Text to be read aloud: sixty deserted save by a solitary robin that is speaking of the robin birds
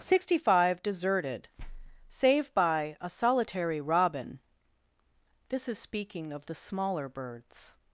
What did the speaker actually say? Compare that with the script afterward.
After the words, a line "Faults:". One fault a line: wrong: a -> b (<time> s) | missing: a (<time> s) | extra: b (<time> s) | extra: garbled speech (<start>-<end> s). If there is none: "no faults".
sixty five deserted save by a solitary robin this is speaking of the smaller birds
Faults:
extra: five (0.5 s)
wrong: that -> this (5.5 s)
wrong: robin -> smaller (6.5 s)